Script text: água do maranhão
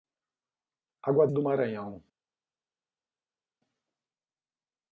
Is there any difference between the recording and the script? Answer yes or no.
no